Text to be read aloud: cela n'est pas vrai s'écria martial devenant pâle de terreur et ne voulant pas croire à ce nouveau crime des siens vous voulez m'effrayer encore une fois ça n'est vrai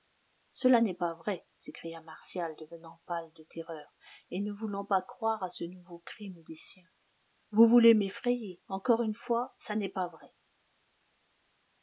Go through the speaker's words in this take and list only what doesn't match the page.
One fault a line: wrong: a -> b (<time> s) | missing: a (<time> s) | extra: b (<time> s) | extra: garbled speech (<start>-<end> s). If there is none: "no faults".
extra: pas (9.9 s)